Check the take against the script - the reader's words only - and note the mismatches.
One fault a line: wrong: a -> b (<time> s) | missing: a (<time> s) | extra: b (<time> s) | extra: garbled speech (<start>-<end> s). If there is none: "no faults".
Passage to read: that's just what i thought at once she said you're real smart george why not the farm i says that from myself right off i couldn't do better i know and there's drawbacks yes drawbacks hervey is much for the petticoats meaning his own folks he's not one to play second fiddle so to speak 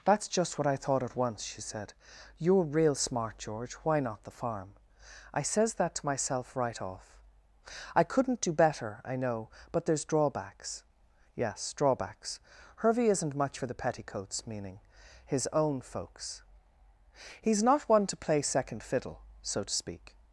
wrong: from -> to (5.9 s)
wrong: and -> but (9.7 s)
wrong: is -> isn't (13.1 s)